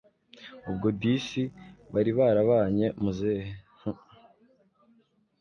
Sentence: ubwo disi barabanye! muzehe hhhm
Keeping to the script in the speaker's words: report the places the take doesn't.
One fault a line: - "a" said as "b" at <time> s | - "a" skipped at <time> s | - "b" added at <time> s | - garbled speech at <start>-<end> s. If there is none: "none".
- "bari" added at 1.9 s